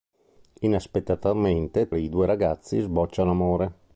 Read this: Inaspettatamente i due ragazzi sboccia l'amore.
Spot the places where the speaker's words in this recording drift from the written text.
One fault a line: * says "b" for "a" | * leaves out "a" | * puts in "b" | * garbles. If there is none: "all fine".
all fine